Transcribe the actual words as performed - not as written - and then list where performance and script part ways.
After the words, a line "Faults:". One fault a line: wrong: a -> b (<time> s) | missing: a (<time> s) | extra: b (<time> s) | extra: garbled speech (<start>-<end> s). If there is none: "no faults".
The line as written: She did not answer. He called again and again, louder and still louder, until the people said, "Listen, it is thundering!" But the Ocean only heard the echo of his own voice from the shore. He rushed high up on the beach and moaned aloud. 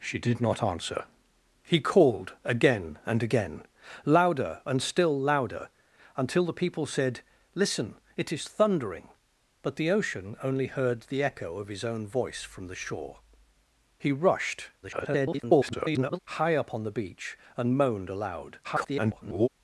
She did not answer. He called again and again, louder and still louder, until the people said, "Listen, it is thundering!" But the Ocean only heard the echo of his own voice from the shore. He rushed [garbled] high up on the beach and moaned aloud. [garbled]
Faults:
extra: garbled speech (14.8-16.2 s)
extra: garbled speech (18.6-19.5 s)